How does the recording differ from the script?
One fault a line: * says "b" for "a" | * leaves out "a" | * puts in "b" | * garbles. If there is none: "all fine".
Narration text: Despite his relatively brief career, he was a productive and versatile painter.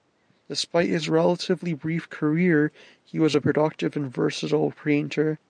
all fine